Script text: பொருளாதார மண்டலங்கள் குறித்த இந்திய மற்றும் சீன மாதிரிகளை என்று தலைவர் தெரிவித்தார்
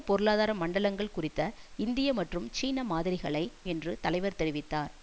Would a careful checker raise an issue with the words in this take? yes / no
no